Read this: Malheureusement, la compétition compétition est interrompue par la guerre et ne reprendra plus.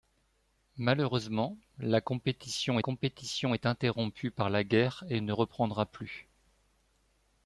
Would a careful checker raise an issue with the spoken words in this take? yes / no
no